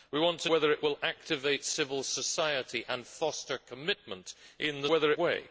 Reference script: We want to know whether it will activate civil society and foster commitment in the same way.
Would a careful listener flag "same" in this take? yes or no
yes